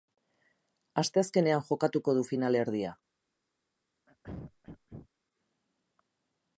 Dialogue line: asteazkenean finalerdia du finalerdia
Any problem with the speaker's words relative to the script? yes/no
yes